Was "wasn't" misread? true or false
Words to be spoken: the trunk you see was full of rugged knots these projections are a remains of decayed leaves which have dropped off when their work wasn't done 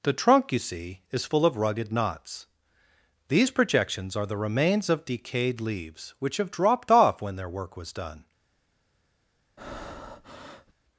true